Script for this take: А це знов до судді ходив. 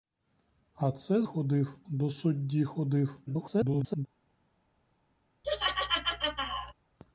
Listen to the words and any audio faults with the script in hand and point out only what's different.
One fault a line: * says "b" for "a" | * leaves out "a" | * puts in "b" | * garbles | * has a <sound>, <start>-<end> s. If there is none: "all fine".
* says "ходив" for "знов"
* garbles
* has a laugh, 5.4-6.7 s